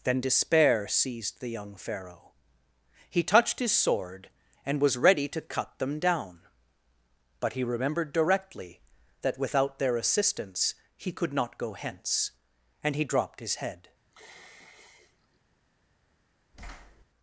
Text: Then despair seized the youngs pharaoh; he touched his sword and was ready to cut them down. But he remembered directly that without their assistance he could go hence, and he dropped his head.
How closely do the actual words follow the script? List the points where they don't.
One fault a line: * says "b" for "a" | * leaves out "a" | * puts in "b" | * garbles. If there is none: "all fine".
* says "young" for "youngs"
* puts in "not"